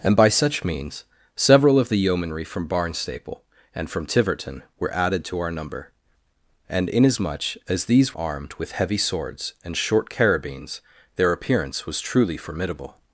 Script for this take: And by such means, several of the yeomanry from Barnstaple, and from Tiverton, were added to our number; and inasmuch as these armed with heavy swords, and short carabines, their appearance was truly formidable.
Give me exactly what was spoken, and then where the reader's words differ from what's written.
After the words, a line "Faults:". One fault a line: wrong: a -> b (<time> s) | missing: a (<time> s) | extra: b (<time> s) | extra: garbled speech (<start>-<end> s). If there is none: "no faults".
And by such means, several of the yeomanry from Barnstaple, and from Tiverton, were added to our number; and inasmuch as these armed with heavy swords, and short carabines, their appearance was truly formidable.
Faults:
no faults